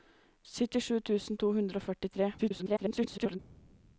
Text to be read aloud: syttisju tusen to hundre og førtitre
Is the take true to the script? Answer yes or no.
no